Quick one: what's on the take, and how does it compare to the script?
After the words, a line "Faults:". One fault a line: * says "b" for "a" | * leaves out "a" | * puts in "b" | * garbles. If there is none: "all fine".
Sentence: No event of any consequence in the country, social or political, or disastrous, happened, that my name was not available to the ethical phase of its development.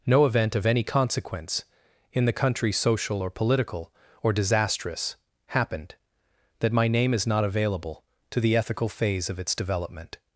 No event of any consequence in the country, social or political, or disastrous, happened, that my name is not available to the ethical phase of its development.
Faults:
* says "is" for "was"